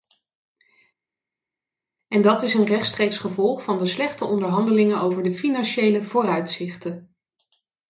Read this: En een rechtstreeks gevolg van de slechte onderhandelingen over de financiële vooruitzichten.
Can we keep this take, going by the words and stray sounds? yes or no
no